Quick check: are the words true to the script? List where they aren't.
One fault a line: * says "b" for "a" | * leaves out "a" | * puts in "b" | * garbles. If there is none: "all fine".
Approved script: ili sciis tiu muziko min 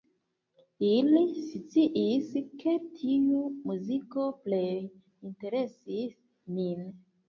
* puts in "ke"
* puts in "plej interesis"